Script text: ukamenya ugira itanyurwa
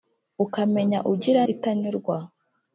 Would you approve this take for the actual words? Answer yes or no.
yes